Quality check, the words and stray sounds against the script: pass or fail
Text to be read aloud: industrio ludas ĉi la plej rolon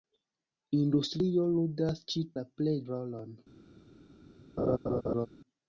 fail